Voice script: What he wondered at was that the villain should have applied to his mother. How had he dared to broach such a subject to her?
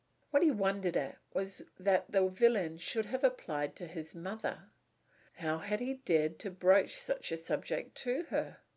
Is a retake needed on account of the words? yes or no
no